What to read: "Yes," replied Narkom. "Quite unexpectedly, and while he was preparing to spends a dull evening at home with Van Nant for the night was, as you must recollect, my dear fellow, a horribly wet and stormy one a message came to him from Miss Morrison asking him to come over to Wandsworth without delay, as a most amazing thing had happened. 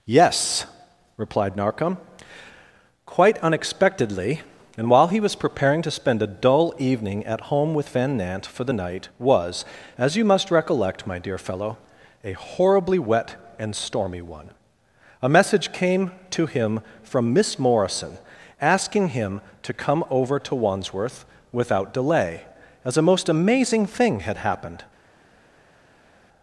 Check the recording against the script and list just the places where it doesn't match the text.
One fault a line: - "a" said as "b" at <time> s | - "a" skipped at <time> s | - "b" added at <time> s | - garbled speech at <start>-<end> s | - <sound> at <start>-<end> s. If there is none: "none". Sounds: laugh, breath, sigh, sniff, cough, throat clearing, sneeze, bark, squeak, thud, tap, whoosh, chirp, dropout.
- "spends" said as "spend" at 5.9 s